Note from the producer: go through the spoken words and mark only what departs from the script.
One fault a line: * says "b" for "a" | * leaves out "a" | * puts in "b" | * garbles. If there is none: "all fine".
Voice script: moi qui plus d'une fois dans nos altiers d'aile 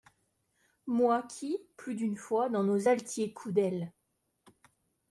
* puts in "coups"